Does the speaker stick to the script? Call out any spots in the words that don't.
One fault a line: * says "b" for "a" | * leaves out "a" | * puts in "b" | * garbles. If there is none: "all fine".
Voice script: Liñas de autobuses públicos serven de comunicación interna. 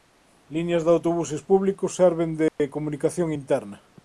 all fine